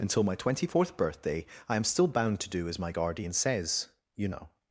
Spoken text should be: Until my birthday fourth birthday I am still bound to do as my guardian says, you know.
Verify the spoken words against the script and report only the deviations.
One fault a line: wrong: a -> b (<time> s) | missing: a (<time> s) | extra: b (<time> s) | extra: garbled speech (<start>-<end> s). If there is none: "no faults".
wrong: birthday -> twenty (0.3 s)